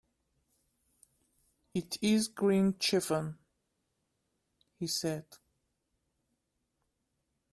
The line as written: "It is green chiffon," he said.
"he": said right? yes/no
yes